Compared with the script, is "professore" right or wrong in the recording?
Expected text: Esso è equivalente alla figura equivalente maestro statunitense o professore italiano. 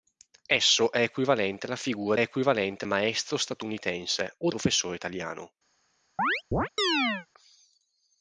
right